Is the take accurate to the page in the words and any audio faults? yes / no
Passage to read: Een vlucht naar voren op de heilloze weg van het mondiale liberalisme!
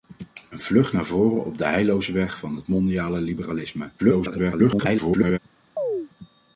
no